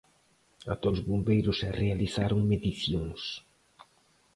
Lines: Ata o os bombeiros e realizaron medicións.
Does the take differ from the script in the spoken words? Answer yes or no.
no